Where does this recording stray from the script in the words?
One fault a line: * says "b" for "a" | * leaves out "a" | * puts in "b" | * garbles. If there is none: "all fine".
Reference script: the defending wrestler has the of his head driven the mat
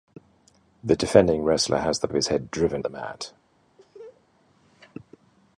all fine